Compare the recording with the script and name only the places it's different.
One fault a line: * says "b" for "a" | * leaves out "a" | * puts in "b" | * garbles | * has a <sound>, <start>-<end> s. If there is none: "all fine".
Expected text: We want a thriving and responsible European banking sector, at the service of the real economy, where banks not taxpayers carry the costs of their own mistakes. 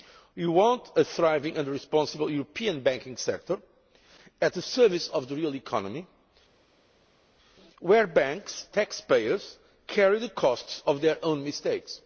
* leaves out "not"